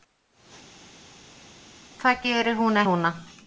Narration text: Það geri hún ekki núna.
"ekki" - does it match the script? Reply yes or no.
no